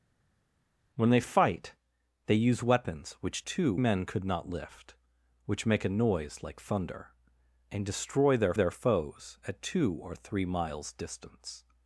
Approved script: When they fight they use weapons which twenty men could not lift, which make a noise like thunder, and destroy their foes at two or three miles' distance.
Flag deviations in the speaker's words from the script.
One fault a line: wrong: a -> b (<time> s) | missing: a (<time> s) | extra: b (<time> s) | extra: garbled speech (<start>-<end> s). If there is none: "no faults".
wrong: twenty -> two (3.4 s)
extra: their (8.5 s)